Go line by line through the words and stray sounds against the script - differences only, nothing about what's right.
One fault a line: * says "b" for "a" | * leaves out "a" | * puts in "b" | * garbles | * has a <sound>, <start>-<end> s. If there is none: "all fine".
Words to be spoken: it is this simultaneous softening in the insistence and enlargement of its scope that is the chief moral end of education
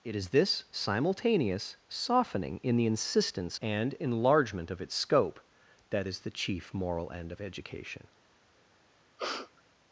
* has a sneeze, 9.2-9.6 s